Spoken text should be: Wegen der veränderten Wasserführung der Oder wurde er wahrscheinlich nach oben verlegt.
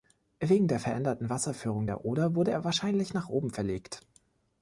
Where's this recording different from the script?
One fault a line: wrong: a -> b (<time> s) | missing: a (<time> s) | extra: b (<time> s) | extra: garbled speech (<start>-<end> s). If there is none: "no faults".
no faults